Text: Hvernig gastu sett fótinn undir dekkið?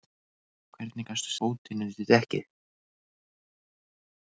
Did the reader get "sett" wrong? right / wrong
wrong